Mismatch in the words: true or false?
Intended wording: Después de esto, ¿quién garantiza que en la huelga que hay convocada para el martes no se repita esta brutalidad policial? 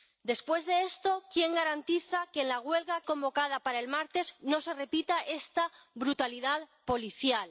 true